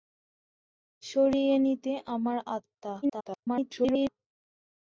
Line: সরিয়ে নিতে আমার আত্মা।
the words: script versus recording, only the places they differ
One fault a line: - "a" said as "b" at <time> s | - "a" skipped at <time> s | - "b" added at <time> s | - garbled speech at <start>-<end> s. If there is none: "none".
- garbled speech at 3.0-4.1 s